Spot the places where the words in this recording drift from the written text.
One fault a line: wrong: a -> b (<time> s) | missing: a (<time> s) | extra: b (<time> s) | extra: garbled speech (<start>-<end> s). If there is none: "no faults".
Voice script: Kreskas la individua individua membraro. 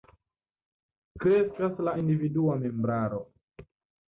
missing: individua (2.6 s)